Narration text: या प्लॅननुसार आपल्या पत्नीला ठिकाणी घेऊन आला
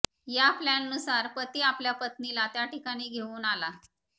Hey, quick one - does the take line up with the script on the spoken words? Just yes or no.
no